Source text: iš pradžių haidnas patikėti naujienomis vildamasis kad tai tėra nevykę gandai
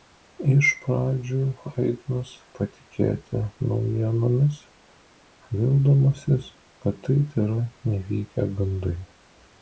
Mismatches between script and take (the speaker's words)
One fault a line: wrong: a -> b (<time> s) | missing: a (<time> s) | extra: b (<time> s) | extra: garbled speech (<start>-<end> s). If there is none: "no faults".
no faults